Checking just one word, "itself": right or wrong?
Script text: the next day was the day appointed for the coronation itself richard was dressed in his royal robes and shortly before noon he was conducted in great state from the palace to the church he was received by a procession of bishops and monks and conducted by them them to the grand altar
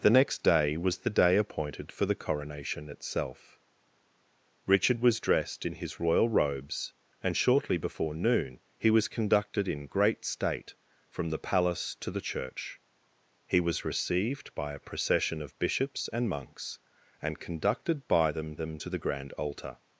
right